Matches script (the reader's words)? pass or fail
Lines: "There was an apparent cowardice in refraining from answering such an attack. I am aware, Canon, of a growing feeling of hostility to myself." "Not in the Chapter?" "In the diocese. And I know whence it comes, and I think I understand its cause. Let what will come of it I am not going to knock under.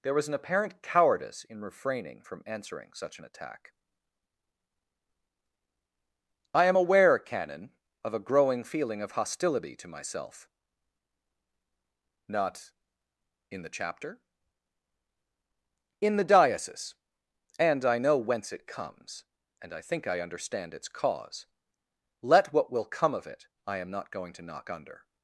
pass